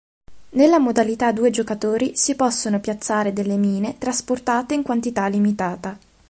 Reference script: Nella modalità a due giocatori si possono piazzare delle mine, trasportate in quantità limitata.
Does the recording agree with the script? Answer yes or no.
yes